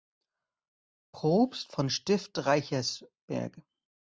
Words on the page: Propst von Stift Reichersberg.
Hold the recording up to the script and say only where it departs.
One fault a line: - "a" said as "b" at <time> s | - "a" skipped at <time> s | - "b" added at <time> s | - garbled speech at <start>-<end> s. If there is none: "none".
none